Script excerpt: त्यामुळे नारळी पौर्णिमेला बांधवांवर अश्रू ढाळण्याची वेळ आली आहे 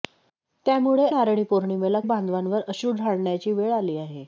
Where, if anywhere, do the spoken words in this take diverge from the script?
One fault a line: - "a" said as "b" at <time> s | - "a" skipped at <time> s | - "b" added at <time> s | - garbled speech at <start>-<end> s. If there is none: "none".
none